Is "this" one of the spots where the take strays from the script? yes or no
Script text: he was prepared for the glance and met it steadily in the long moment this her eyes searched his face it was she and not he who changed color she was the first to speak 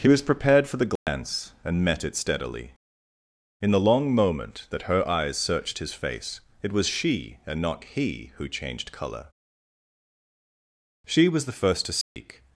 yes